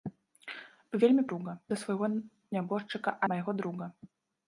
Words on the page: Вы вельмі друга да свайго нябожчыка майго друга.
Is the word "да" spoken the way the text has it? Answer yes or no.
yes